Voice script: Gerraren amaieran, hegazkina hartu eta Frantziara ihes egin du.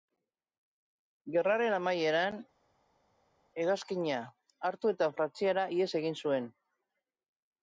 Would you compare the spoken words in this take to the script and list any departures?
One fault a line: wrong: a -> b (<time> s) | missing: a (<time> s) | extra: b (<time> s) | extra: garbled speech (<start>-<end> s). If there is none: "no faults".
wrong: du -> zuen (6.3 s)